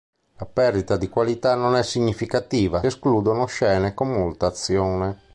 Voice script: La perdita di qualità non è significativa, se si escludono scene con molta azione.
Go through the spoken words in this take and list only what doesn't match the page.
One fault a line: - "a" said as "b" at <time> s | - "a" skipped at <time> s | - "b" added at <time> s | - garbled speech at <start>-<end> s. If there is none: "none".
- "se si" skipped at 2.8 s